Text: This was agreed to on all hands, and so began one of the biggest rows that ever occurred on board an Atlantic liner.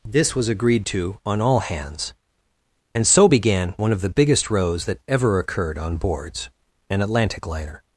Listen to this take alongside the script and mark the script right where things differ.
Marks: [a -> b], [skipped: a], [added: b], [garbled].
This was agreed to on all hands, and so began one of the biggest rows that ever occurred on [board -> boards] an Atlantic liner.